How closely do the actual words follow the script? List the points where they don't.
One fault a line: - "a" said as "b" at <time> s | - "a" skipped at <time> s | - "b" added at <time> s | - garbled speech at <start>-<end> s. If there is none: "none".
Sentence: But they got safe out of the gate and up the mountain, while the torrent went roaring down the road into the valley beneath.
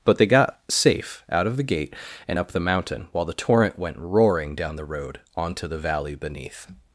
- "into" said as "onto" at 5.4 s